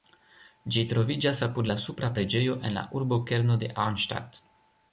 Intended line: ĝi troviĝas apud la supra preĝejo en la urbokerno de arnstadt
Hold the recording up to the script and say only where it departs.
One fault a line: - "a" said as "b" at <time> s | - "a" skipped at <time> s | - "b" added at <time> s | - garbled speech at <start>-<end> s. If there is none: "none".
none